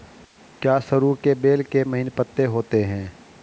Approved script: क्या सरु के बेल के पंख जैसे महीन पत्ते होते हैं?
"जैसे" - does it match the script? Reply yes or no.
no